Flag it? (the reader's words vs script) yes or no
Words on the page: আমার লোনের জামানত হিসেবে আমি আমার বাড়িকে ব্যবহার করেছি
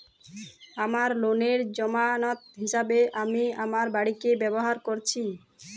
no